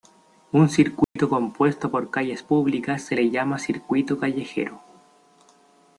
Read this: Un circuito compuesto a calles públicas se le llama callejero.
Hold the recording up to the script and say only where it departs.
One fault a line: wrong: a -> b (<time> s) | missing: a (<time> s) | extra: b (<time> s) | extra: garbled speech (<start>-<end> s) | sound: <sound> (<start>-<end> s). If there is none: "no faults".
sound: dropout (1.0-1.2 s)
wrong: a -> por (1.9 s)
extra: circuito (3.6 s)